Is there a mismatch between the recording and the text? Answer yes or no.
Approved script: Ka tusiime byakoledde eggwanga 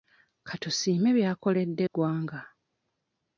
no